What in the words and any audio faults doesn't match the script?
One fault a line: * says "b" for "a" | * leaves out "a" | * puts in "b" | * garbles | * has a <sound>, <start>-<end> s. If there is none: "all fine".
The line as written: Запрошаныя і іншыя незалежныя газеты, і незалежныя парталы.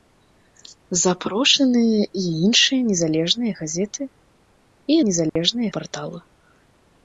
* has a dropout, 5.3-5.4 s